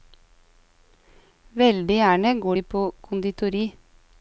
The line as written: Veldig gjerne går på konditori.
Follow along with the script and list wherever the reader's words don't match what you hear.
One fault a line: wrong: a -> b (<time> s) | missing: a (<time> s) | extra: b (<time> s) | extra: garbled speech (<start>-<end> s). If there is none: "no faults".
extra: de (2.5 s)